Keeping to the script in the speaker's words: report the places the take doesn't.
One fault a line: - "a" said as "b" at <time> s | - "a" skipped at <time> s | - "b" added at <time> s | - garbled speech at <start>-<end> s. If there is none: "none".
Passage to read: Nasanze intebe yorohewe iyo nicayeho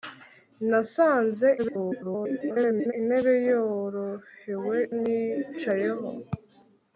- garbled speech at 1.6-2.9 s
- "iyo" skipped at 4.8 s